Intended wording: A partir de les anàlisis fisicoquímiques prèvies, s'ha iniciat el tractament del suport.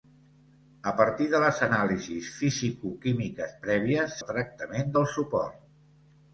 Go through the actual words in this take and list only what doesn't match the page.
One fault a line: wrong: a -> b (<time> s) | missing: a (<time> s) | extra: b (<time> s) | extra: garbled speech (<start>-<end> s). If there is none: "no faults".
missing: s'ha iniciat (4.2 s)